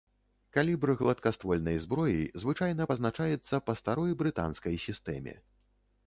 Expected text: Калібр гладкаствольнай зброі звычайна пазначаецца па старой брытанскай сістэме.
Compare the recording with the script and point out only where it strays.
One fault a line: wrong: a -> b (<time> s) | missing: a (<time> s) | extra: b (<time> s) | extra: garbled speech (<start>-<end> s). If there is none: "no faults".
no faults